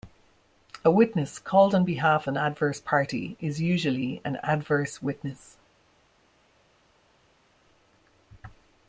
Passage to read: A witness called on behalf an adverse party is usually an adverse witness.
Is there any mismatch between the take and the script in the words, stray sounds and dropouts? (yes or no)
no